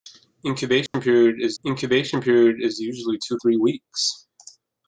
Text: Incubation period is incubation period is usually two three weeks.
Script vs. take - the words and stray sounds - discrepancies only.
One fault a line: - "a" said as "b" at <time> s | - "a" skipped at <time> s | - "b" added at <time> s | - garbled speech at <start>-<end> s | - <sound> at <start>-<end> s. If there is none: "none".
- dropout at 0.9-0.9 s